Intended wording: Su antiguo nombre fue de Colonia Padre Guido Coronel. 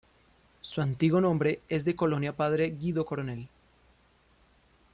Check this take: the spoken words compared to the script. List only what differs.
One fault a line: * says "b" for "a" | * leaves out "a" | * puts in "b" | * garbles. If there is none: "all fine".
* says "es" for "fue"